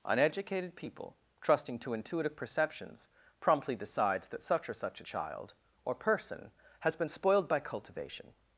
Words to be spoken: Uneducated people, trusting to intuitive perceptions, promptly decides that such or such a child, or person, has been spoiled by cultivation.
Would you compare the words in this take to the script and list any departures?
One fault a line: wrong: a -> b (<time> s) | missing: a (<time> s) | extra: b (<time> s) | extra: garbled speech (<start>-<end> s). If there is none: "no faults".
no faults